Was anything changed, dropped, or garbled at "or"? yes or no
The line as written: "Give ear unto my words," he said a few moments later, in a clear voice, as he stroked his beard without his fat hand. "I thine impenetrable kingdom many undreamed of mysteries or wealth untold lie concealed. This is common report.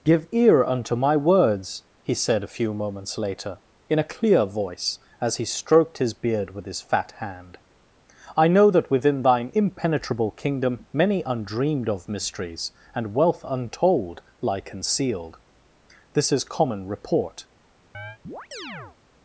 yes